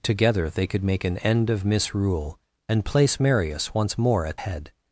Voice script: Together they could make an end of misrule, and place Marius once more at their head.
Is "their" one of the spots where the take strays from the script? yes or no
yes